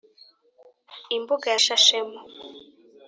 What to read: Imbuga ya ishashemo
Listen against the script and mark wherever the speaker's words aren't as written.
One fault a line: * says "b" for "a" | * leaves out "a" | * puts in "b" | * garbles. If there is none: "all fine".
all fine